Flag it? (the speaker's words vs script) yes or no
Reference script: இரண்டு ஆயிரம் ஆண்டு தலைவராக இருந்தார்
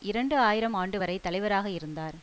yes